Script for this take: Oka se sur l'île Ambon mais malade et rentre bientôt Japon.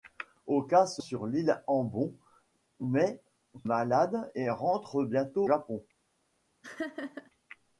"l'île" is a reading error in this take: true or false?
false